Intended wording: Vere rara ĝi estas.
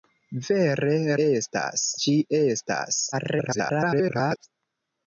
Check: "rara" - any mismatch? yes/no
yes